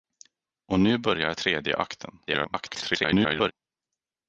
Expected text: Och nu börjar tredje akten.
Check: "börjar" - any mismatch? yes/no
no